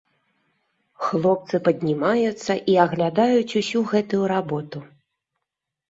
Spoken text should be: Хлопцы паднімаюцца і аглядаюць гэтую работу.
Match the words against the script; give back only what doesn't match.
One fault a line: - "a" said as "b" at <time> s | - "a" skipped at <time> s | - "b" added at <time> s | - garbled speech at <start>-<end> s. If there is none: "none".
- "усю" added at 3.6 s